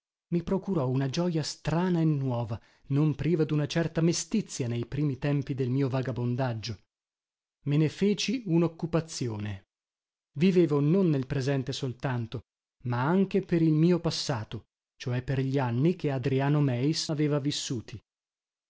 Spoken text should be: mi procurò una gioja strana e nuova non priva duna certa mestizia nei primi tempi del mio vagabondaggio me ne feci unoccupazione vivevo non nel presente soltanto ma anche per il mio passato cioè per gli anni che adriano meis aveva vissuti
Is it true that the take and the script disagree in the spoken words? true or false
false